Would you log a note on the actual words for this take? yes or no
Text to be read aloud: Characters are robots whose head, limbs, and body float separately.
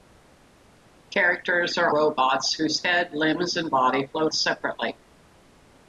no